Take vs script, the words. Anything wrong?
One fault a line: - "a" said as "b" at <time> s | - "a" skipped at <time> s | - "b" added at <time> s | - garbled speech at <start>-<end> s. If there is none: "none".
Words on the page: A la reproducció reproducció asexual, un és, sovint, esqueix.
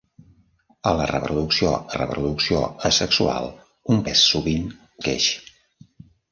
none